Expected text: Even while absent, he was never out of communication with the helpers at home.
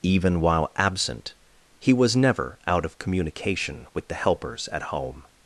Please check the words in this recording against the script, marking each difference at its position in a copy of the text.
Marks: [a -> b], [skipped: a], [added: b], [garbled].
Even while absent, he was never out of communication with the helpers at home.